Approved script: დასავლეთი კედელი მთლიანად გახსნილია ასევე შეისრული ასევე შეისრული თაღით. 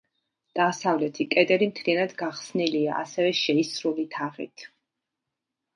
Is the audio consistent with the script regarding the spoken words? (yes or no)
no